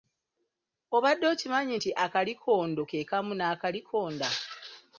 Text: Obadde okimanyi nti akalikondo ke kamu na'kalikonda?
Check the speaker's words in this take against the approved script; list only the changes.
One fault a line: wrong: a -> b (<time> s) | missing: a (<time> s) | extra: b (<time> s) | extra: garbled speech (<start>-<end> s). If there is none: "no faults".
no faults